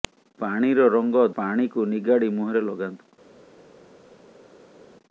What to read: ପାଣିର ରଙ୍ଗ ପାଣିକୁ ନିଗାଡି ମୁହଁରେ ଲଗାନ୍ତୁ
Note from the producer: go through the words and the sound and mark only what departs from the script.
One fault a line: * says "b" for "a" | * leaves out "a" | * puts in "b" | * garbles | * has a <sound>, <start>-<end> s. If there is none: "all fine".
all fine